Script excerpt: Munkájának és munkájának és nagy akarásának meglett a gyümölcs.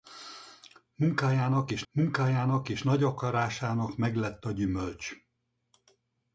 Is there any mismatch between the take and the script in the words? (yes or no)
no